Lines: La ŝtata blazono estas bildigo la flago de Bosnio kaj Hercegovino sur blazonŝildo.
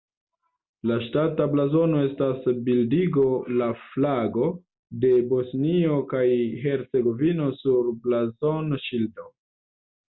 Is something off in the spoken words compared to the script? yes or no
no